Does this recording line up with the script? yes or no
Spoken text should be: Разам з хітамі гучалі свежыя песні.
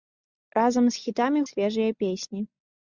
no